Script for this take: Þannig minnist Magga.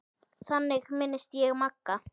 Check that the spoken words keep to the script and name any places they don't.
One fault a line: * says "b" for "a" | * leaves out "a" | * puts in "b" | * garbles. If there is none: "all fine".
* puts in "ég"